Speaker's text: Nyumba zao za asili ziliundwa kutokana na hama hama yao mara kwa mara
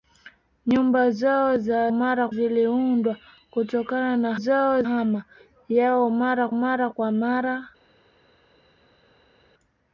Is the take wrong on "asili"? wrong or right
wrong